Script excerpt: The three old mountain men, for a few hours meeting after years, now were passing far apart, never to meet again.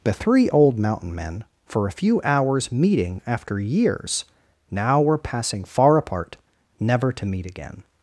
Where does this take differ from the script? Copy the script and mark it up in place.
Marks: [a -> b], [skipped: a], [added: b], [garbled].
The three old mountain men, for a few hours meeting after years, now were passing far apart, never to meet again.